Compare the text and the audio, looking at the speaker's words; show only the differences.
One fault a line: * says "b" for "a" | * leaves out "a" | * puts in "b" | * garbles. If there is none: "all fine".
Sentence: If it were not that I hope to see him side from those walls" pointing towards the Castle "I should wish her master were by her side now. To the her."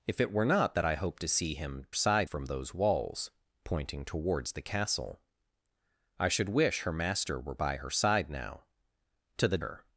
all fine